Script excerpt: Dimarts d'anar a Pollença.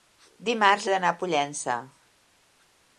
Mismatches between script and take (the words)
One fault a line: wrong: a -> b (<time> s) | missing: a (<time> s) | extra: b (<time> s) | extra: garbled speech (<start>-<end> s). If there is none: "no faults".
no faults